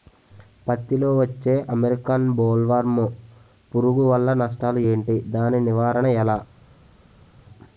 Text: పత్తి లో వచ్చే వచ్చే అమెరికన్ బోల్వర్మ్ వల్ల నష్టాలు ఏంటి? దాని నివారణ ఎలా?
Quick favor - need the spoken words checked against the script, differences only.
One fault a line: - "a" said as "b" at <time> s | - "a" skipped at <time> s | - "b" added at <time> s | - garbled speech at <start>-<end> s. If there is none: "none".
- "వచ్చే" skipped at 1.6 s
- "పురుగు" added at 3.7 s